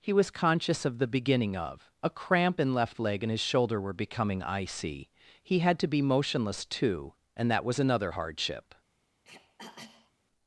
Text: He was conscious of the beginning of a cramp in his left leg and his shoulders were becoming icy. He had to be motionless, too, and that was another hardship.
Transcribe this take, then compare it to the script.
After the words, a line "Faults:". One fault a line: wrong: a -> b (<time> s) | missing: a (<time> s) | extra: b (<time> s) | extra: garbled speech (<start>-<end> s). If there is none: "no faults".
He was conscious of the beginning of a cramp in left leg and his shoulder were becoming icy. He had to be motionless, too, and that was another hardship.
Faults:
missing: his (2.7 s)
wrong: shoulders -> shoulder (3.4 s)